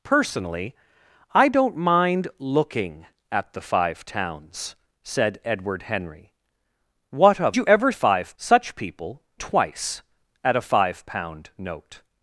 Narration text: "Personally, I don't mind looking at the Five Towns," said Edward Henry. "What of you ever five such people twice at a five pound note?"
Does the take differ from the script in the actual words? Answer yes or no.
no